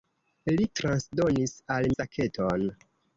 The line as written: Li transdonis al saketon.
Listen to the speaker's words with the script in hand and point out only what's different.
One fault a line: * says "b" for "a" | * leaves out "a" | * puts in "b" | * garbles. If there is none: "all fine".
all fine